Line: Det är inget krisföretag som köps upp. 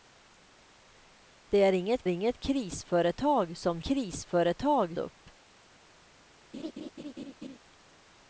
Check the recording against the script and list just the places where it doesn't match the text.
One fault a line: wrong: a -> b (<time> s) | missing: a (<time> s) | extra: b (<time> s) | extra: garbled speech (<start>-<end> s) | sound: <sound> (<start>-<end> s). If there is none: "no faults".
extra: inget (2.1 s)
wrong: köps -> krisföretag (3.8 s)
sound: laugh (6.5-7.6 s)